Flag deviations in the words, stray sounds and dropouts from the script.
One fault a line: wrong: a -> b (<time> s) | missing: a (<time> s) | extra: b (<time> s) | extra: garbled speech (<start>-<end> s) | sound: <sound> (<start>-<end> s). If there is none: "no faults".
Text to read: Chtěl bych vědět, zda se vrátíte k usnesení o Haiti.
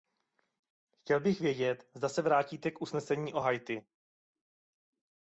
no faults